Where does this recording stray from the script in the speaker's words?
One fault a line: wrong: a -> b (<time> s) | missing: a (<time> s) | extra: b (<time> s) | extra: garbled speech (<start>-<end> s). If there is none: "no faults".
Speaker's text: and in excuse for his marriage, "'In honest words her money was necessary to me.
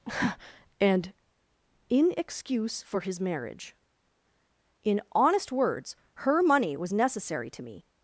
no faults